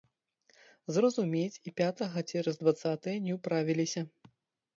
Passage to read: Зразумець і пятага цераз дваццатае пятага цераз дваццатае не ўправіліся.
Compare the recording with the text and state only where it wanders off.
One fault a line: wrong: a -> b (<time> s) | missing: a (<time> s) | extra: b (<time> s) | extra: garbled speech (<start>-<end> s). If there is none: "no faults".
missing: пятага цераз дваццатае (3.2 s)